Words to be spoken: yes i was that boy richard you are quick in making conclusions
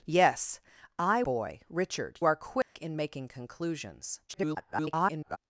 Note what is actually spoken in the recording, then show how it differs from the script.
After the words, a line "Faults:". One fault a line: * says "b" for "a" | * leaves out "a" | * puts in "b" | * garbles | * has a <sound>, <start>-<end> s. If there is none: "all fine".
yes i boy richard are quick in making conclusions [garbled]
Faults:
* leaves out "was that"
* leaves out "you"
* has a dropout, 2.6-2.7 s
* garbles